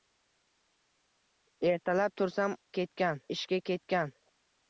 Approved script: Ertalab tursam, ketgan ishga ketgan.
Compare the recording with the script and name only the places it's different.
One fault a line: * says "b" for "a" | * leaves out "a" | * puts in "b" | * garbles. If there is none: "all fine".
all fine